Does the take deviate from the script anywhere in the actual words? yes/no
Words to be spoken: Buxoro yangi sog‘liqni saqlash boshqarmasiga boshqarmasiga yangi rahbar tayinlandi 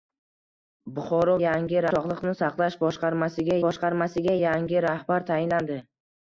no